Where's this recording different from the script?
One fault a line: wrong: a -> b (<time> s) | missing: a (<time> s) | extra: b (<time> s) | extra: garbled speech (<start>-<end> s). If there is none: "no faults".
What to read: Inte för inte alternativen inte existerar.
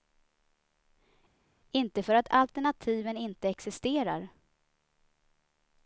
wrong: inte -> att (2.1 s)